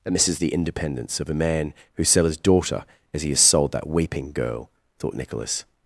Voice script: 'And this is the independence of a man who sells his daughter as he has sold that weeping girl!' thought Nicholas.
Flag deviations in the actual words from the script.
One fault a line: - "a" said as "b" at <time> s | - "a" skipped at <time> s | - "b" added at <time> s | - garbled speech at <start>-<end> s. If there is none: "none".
- "sells" said as "sell" at 2.0 s